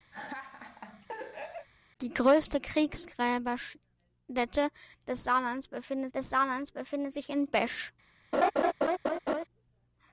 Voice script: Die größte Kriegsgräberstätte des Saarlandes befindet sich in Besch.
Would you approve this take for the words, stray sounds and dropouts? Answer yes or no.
no